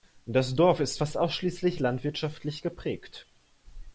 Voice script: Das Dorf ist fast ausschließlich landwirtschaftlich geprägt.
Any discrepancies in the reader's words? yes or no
no